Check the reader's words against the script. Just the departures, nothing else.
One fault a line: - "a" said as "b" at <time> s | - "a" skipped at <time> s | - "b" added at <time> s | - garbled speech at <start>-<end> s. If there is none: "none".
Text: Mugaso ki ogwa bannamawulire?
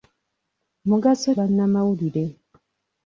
- "ki ogwa" skipped at 1.3 s